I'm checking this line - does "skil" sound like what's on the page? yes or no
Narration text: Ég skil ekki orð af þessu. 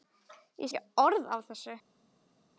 no